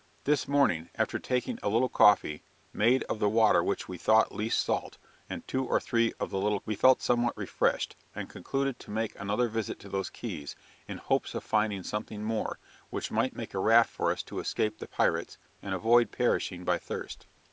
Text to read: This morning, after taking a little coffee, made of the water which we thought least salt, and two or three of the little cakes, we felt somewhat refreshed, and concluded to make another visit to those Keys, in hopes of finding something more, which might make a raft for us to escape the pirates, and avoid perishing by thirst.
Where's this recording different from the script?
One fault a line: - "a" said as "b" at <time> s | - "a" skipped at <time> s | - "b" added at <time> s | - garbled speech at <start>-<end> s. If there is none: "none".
- "cakes" skipped at 6.6 s